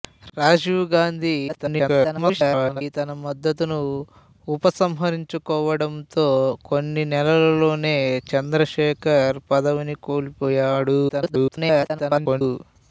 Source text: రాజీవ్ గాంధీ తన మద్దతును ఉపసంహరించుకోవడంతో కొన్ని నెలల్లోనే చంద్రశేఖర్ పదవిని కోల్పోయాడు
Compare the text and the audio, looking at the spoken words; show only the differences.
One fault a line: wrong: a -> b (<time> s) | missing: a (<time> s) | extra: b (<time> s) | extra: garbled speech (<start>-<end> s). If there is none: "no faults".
extra: garbled speech (1.5-2.8 s)
extra: garbled speech (11.1-12.4 s)